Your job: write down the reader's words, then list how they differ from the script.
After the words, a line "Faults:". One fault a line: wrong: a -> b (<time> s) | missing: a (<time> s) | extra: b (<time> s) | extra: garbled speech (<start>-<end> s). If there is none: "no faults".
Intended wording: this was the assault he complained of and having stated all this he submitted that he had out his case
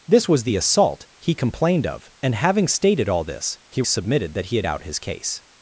this was the assault he complained of and having stated all this he submitted that he had out his case
Faults:
no faults